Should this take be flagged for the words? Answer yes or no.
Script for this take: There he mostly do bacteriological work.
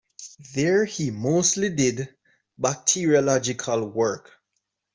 yes